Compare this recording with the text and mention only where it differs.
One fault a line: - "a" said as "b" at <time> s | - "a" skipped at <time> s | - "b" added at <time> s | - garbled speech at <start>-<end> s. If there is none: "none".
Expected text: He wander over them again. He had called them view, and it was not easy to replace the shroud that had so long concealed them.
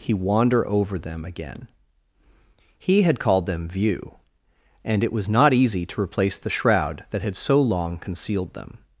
none